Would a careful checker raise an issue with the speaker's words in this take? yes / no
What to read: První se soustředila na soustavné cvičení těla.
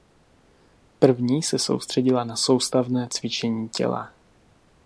no